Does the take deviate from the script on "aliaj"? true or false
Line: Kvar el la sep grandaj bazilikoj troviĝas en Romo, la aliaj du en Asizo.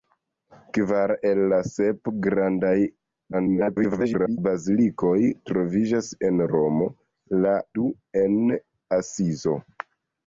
true